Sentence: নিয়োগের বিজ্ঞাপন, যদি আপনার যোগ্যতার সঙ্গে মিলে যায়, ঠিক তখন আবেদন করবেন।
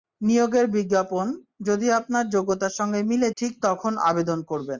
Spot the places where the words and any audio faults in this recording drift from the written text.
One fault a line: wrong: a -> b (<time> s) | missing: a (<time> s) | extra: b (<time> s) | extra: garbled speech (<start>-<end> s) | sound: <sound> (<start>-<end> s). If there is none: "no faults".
missing: যায় (3.3 s)